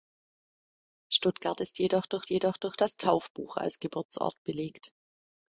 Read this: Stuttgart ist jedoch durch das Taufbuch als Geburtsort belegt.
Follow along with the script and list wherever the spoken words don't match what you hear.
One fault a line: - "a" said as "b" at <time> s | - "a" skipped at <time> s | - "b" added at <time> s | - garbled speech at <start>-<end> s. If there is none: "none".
- "jedoch durch" added at 2.3 s